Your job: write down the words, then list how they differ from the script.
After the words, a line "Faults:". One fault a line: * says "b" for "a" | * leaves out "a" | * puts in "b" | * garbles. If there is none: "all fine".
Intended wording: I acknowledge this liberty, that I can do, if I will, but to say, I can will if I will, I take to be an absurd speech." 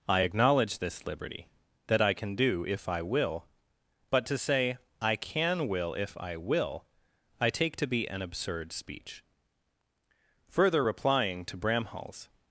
I acknowledge this liberty, that I can do, if I will, but to say, I can will if I will, I take to be an absurd speech." Further replying to Bramhall's
Faults:
* puts in "Further replying to Bramhall's"